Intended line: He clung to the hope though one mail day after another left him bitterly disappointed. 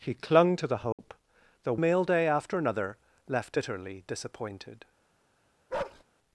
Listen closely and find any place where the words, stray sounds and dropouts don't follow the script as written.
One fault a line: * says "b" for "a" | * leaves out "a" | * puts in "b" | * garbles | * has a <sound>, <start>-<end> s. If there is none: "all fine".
* has a dropout, 0.9-1.0 s
* leaves out "one"
* leaves out "him"
* has a bark, 5.7-6.0 s